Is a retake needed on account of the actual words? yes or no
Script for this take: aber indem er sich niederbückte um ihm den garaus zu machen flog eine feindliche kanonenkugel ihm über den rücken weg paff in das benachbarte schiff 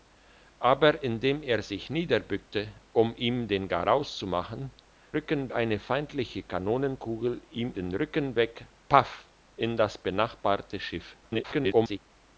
yes